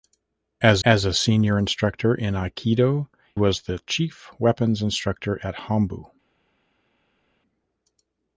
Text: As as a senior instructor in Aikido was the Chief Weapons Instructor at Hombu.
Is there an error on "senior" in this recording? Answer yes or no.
no